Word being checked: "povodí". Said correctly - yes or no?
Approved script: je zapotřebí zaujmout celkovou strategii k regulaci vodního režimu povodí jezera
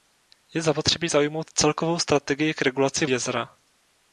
no